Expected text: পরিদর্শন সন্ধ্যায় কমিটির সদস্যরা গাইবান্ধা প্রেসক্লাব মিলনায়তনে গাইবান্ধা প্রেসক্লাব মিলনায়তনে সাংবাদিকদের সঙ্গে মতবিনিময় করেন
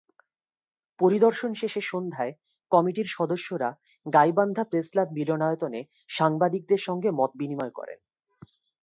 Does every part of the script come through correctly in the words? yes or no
no